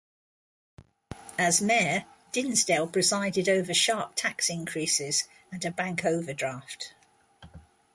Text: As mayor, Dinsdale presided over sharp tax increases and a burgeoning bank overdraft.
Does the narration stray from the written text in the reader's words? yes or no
yes